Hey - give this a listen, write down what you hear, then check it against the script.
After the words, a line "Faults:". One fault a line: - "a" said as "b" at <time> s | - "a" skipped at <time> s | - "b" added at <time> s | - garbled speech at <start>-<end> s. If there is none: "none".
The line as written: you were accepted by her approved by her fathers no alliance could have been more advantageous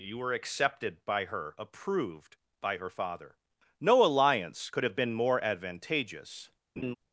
you were accepted by her approved by her father no alliance could have been more advantageous
Faults:
- "fathers" said as "father" at 2.9 s